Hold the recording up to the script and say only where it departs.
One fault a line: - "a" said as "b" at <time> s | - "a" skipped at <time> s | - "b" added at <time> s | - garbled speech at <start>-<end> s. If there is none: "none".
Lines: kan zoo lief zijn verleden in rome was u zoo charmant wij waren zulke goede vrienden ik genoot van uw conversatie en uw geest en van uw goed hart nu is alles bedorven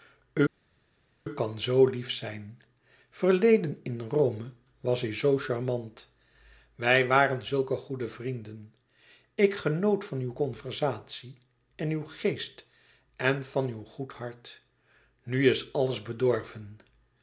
none